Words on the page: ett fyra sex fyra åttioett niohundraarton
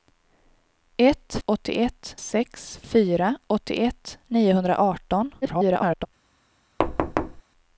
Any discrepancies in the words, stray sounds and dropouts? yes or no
yes